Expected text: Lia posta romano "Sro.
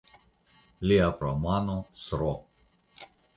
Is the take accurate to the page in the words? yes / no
no